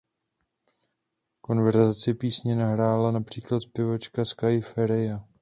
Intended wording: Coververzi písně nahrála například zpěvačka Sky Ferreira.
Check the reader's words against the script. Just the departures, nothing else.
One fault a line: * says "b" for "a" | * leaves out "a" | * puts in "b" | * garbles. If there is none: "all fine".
all fine